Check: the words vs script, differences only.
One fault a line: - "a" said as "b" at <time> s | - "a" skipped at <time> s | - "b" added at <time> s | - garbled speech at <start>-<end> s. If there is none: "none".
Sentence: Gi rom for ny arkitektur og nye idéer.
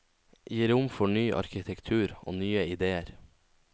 none